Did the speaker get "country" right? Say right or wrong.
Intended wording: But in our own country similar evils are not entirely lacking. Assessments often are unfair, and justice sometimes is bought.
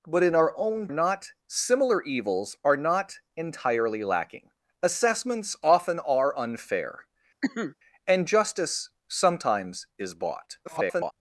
wrong